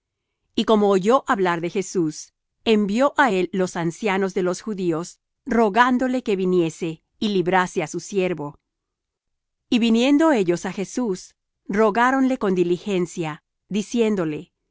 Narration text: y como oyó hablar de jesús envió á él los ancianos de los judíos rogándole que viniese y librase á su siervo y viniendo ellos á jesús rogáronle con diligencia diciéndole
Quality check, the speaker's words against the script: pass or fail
pass